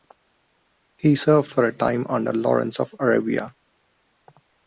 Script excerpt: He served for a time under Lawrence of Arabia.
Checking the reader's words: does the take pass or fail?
pass